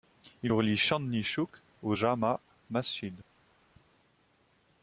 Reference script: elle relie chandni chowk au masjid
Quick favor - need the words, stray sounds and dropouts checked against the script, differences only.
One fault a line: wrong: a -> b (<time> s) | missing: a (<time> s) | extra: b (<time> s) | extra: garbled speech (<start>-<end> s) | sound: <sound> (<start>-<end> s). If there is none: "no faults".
wrong: elle -> il (0.4 s)
extra: jama (1.9 s)